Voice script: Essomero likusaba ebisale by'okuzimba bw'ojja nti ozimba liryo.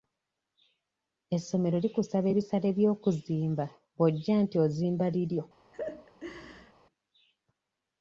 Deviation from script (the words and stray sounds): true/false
true